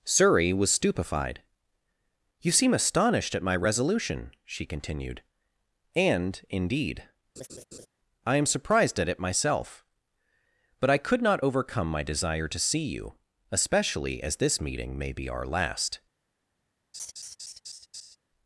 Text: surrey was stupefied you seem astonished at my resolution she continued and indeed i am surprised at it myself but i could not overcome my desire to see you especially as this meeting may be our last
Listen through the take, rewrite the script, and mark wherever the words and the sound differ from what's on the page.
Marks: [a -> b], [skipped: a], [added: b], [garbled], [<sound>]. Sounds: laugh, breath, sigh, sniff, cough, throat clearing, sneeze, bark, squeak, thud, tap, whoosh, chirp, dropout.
surrey was stupefied you seem astonished at my resolution she continued and indeed [laugh] i am surprised at it myself but i could not overcome my desire to see you especially as this meeting may be our last [laugh]